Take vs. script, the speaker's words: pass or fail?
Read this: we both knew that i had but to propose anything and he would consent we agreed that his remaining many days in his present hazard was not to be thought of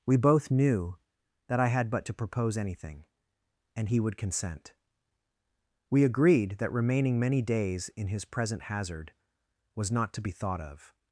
fail